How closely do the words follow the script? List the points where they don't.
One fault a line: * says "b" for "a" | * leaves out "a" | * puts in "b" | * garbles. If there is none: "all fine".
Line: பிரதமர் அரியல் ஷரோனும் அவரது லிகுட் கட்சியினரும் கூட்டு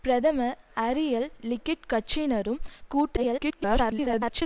* leaves out "ஷரோனும் அவரது"
* garbles